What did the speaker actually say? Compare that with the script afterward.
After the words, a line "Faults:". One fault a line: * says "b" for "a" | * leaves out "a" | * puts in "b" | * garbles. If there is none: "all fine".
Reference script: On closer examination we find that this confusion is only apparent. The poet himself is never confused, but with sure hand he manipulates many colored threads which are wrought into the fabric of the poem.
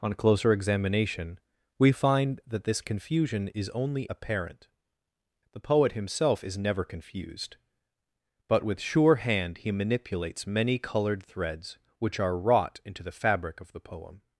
On closer examination we find that this confusion is only apparent. The poet himself is never confused, but with sure hand he manipulates many colored threads which are wrought into the fabric of the poem.
Faults:
all fine